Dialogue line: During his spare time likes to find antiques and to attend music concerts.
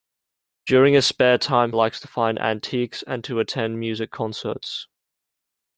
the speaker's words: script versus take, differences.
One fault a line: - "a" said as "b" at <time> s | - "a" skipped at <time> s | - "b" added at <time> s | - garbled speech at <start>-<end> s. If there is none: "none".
none